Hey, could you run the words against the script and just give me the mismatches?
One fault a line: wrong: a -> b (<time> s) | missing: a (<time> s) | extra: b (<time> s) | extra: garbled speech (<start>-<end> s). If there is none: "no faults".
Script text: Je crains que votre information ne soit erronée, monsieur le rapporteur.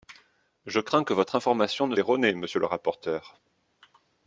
missing: soit (1.9 s)